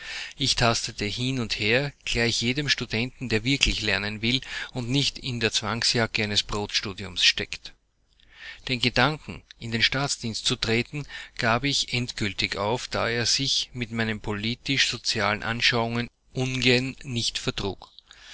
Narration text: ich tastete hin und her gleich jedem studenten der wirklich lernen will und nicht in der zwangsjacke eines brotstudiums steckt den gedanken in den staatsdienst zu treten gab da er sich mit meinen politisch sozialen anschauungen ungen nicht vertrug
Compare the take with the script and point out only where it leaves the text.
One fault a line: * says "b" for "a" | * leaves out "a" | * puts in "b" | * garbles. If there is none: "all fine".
* puts in "ich endgültig auf"